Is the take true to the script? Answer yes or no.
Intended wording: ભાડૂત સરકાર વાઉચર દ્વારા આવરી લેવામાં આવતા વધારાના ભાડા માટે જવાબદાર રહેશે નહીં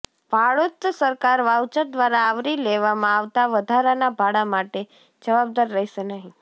yes